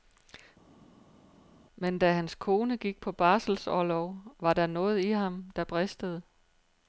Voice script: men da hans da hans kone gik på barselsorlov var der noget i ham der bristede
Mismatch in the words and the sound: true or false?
true